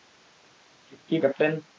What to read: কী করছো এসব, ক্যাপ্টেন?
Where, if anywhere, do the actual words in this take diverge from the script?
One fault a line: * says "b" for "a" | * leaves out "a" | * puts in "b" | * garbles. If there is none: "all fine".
* leaves out "করছো এসব"